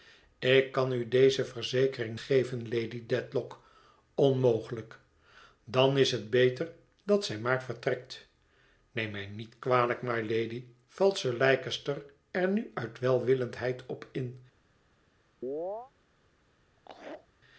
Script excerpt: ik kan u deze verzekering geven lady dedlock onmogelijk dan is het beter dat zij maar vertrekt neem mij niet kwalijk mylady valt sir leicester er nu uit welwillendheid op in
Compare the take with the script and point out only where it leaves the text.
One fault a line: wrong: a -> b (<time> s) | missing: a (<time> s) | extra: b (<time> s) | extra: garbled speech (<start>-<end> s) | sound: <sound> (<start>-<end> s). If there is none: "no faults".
sound: chirp (15.4-15.9 s)
sound: laugh (16.8-17.3 s)